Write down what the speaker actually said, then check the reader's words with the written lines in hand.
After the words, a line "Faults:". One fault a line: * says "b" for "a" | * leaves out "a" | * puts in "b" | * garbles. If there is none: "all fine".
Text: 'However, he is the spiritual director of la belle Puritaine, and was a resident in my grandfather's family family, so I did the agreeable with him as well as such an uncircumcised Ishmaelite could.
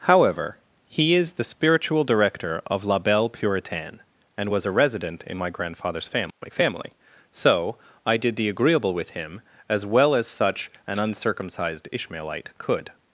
'However, he is the spiritual director of la belle Puritaine, and was a resident in my grandfather's family family, so I did the agreeable with him as well as such an uncircumcised Ishmaelite could.
Faults:
all fine